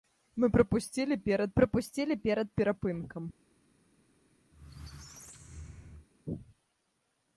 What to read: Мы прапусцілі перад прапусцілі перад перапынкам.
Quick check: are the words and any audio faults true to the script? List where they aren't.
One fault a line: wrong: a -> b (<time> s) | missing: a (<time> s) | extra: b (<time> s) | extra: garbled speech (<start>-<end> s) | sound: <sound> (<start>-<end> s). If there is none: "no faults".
sound: squeak (4.5-6.1 s)